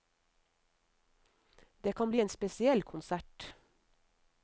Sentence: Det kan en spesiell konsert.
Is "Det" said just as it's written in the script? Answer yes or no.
yes